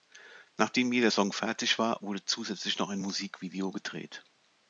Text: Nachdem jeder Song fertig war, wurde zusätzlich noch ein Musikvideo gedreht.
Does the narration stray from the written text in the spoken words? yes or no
no